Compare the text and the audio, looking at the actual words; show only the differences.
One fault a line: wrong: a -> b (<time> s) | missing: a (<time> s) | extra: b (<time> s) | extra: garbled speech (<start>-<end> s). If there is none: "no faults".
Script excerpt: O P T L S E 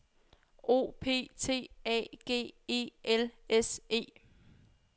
extra: A G E (1.9 s)